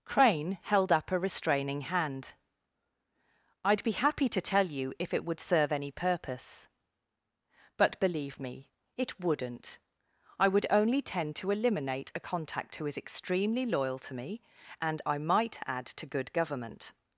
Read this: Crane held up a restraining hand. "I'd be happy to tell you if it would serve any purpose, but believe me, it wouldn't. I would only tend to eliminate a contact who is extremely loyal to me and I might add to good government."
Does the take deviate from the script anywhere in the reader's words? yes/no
no